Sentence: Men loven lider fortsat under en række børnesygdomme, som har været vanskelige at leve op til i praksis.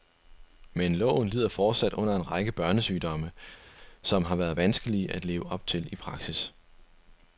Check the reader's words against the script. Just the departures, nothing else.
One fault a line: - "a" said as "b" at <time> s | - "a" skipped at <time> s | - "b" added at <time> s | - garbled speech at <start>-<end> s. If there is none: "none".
none